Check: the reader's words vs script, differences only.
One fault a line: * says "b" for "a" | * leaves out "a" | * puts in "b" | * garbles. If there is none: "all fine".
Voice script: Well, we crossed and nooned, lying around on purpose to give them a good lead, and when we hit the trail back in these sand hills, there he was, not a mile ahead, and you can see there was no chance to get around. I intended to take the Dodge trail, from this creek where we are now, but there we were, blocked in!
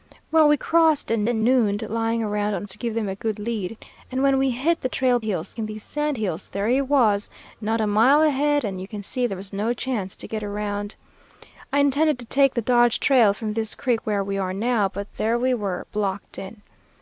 * puts in "and"
* leaves out "purpose"
* says "hills" for "back"